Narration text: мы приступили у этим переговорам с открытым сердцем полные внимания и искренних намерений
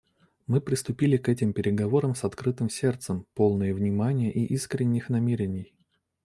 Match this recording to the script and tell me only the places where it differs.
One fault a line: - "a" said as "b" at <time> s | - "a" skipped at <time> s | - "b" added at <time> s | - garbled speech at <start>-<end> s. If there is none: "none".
- "у" said as "к" at 1.2 s